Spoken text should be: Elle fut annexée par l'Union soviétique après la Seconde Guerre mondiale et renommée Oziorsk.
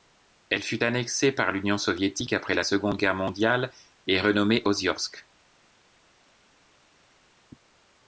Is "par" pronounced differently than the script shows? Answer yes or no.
no